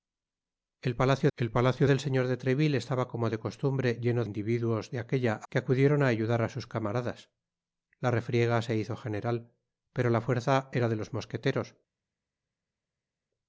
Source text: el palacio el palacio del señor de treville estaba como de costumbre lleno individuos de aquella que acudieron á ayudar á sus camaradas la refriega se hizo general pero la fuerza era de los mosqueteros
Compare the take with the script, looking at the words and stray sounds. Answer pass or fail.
pass